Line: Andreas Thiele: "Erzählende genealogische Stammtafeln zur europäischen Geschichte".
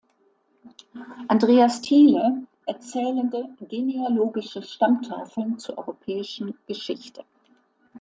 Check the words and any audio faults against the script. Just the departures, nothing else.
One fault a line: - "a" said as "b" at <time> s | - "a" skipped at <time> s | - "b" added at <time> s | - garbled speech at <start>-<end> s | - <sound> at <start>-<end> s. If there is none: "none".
none